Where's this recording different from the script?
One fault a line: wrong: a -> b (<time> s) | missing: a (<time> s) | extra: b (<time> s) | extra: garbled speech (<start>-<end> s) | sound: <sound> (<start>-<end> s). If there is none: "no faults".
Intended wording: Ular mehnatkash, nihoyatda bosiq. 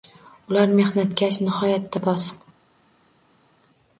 no faults